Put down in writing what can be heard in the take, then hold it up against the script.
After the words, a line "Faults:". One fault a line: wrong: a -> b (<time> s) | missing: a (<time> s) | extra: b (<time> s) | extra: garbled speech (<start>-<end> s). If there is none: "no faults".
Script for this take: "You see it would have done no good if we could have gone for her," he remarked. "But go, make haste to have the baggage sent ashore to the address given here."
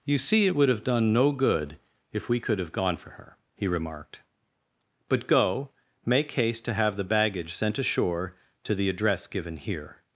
"You see it would have done no good if we could have gone for her," he remarked. "But go, make haste to have the baggage sent ashore to the address given here."
Faults:
no faults